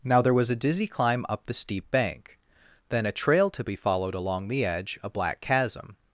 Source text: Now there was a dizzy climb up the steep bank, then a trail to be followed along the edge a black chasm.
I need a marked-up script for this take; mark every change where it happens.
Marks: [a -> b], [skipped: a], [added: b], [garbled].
Now there was a dizzy climb up the steep bank, then a trail to be followed along the edge a black chasm.